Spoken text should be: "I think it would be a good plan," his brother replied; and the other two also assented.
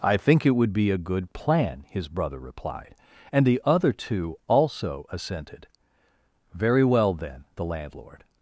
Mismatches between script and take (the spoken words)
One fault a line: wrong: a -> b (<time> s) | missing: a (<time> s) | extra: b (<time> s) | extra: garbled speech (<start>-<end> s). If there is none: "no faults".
extra: Very well then the landlord (6.5 s)